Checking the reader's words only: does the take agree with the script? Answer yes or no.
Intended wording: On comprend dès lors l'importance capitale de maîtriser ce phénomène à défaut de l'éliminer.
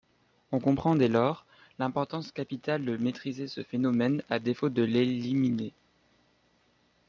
yes